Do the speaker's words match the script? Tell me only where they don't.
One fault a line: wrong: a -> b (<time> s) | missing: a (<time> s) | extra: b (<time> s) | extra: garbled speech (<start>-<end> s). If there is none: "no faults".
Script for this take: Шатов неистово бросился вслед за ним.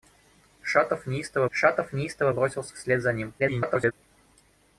extra: шатов неистово (1.5 s)
extra: garbled speech (3.4-3.9 s)